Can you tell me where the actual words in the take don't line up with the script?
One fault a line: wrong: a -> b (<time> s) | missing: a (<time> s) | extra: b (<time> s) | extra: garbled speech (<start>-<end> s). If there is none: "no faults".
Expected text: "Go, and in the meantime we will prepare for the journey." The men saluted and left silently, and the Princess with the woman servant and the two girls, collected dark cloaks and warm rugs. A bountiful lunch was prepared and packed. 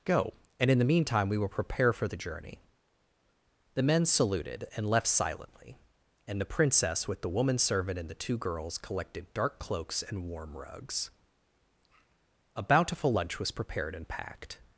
no faults